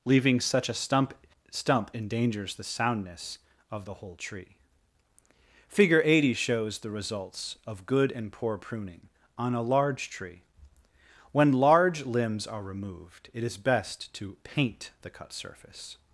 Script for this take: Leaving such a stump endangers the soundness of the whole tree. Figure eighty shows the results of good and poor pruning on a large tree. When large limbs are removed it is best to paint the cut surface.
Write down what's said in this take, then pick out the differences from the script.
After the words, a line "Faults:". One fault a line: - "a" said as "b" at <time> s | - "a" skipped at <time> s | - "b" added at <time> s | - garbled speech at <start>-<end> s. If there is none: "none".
Leaving such a stump stump endangers the soundness of the whole tree. Figure eighty shows the results of good and poor pruning on a large tree. When large limbs are removed it is best to paint the cut surface.
Faults:
- "stump" added at 1.5 s